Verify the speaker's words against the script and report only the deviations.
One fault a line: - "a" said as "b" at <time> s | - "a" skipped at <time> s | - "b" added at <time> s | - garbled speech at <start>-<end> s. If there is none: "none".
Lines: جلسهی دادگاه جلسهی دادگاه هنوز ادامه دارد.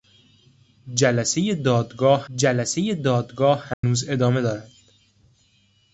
none